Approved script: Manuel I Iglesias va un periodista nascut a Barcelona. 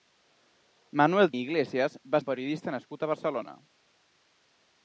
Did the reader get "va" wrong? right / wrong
right